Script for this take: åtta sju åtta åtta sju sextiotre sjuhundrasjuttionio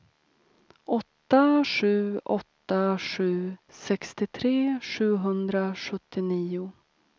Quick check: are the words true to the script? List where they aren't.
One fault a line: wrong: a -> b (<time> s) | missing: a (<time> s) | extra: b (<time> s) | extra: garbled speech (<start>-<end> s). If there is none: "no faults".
missing: åtta (3.0 s)